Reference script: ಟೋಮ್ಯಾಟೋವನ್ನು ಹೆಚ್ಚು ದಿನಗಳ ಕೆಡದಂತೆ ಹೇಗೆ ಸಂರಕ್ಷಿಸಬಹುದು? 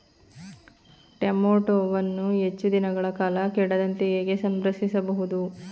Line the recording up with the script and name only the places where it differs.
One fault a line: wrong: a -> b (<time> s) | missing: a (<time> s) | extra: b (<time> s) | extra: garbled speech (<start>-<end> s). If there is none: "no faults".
extra: ಕಾಲ (3.1 s)